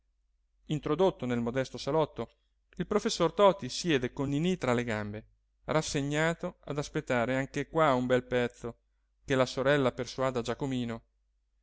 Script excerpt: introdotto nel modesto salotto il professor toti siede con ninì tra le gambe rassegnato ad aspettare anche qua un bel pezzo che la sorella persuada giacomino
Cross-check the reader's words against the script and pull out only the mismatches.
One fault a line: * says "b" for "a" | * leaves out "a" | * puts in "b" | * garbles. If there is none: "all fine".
all fine